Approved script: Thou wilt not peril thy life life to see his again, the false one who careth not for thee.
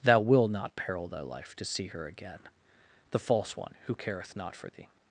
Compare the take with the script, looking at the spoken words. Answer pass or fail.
fail